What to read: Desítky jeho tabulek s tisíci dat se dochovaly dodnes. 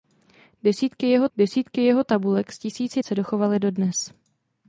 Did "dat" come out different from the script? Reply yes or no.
yes